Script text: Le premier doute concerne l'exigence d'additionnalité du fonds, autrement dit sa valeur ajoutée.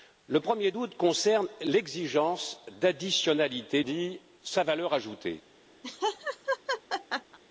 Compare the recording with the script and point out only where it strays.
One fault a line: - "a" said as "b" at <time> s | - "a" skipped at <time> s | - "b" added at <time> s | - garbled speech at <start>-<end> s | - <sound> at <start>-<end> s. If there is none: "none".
- "du fonds autrement" skipped at 3.8 s
- laugh at 5.8-7.4 s